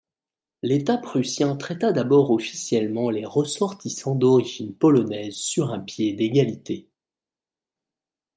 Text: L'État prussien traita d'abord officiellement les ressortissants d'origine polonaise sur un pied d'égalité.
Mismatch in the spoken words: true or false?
false